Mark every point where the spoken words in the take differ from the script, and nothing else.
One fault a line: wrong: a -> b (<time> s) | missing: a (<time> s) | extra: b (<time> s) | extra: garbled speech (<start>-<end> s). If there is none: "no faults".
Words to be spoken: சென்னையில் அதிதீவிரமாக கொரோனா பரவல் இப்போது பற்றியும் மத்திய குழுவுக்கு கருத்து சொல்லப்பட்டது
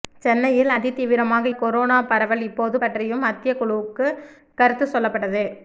no faults